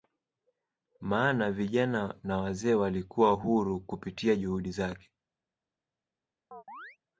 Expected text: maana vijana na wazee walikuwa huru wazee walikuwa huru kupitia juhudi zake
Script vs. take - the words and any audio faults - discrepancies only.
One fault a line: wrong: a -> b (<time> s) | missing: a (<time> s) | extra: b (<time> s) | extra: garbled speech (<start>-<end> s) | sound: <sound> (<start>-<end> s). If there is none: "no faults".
missing: wazee walikuwa huru (3.8 s)
sound: chirp (6.5-7.0 s)